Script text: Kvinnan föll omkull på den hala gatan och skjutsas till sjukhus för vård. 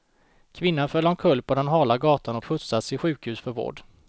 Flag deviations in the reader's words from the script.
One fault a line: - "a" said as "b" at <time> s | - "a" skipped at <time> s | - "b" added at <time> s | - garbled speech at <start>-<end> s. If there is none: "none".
none